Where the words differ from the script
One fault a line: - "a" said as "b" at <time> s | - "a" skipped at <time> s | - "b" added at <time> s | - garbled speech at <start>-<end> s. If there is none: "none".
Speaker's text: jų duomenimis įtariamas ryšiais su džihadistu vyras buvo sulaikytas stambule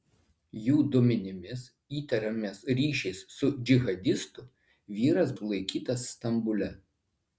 - "buvo" skipped at 5.4 s